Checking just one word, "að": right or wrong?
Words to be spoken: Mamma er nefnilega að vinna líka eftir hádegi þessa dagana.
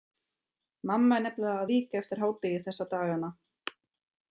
wrong